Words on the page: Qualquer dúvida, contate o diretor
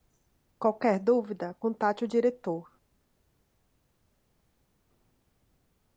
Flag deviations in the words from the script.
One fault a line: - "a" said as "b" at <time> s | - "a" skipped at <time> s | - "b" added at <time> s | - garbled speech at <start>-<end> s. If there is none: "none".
none